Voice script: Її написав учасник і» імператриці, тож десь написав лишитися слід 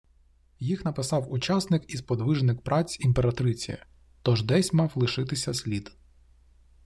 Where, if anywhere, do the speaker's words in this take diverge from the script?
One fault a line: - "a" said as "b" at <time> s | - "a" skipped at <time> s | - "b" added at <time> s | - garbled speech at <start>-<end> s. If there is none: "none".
- "Її" said as "Їх" at 0.6 s
- "сподвижник праць" added at 2.0 s
- "написав" said as "мав" at 4.7 s